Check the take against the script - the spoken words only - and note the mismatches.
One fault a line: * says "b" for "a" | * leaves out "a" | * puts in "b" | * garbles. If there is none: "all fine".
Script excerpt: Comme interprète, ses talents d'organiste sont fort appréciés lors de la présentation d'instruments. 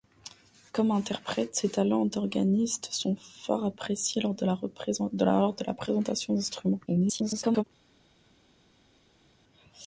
* garbles